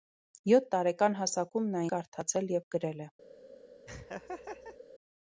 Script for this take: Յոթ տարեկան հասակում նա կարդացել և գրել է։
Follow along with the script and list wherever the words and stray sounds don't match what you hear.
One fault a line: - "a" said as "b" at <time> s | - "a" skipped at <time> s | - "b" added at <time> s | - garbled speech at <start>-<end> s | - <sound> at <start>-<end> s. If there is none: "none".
- laugh at 3.9-4.8 s